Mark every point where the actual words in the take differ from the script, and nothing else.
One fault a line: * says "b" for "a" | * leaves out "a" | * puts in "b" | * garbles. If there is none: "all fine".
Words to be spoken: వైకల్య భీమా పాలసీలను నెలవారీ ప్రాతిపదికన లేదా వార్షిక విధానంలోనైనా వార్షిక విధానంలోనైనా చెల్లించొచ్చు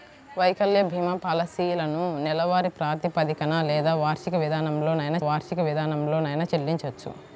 all fine